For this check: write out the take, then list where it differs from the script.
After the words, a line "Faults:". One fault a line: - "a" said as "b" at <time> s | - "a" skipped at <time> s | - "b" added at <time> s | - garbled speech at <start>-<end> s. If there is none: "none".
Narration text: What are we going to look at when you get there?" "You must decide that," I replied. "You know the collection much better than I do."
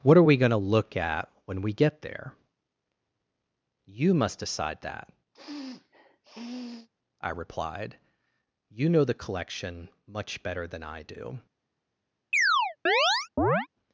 What are we going to look at when we get there?" "You must decide that," I replied. "You know the collection much better than I do."
Faults:
- "you" said as "we" at 1.6 s